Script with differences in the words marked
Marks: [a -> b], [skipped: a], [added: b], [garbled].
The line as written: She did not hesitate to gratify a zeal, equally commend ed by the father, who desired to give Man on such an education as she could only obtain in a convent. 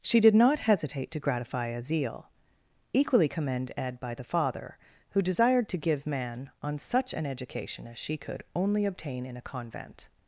She did not hesitate to gratify a zeal, equally commend ed by the father, who desired to give Man on such an education as she could only obtain in a convent.